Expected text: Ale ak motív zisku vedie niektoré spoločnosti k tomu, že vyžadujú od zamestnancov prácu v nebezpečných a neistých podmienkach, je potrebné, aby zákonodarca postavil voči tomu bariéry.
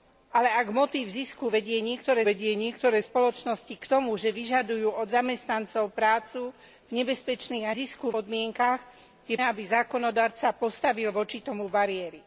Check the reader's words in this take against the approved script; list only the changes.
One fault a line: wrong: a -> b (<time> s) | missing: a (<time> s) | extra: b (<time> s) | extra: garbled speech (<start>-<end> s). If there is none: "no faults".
extra: vedie niektoré (2.2 s)
wrong: neistých -> zisku (7.7 s)
missing: potrebné (9.4 s)